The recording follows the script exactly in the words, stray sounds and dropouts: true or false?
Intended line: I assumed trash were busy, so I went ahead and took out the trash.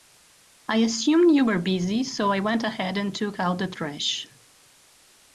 false